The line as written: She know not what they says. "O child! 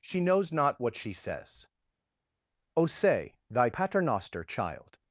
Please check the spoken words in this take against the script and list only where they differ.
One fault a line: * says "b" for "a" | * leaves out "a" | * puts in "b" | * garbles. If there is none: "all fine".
* says "knows" for "know"
* says "she" for "they"
* puts in "say thy paternoster"